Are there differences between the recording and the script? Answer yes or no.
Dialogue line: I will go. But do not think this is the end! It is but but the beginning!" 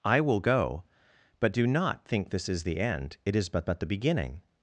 no